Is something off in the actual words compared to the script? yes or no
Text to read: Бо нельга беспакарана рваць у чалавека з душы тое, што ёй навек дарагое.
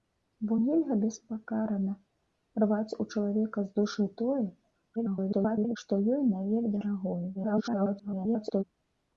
yes